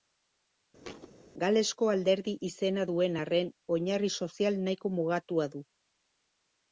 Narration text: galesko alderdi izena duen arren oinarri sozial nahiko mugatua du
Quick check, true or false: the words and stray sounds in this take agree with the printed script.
false